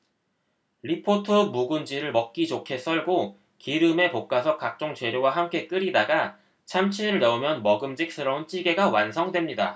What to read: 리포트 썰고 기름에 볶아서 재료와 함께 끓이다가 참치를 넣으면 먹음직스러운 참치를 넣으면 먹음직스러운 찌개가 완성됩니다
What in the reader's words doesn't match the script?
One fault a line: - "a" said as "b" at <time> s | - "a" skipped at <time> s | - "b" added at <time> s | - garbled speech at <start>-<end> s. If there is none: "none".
- "묵은지를 먹기 좋게" added at 1.3 s
- "각종" added at 4.6 s
- "참치를 넣으면 먹음직스러운" skipped at 8.5 s